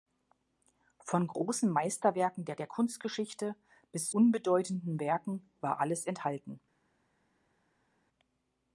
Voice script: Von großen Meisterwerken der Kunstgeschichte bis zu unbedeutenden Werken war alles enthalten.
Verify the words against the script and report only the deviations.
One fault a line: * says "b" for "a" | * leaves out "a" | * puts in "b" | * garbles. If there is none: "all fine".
* puts in "der"
* leaves out "zu"